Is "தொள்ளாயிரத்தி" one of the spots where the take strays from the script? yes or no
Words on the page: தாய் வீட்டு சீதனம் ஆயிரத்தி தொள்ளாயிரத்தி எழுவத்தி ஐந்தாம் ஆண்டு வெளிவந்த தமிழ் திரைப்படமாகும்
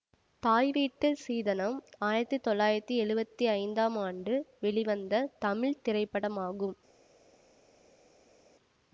no